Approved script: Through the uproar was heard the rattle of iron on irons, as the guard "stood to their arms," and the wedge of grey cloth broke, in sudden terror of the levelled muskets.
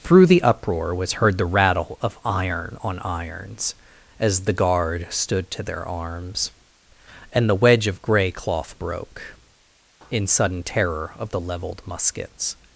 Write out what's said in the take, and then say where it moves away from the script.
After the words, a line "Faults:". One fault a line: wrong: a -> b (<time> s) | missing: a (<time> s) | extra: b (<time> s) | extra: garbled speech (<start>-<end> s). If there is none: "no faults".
Through the uproar was heard the rattle of iron on irons, as the guard "stood to their arms," and the wedge of grey cloth broke, in sudden terror of the levelled muskets.
Faults:
no faults